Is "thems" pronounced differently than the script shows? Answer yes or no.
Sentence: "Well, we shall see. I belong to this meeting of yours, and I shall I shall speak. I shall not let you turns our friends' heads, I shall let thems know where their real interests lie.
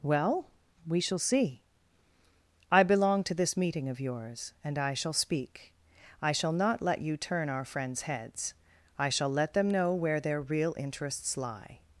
yes